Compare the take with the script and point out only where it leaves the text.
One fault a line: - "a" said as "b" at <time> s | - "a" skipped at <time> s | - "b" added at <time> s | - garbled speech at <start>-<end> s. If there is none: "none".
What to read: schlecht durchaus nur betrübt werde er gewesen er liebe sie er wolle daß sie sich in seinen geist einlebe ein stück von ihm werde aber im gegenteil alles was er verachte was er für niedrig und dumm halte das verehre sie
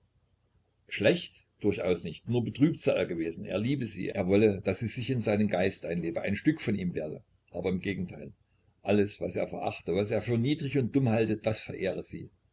- "nicht" added at 2.0 s
- "werde" said as "sei" at 2.8 s